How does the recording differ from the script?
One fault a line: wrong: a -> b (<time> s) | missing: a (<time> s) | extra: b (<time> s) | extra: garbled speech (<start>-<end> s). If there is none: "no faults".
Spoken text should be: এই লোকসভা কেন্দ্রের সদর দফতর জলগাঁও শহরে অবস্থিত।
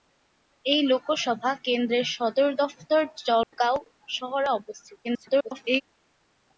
extra: garbled speech (5.0-5.8 s)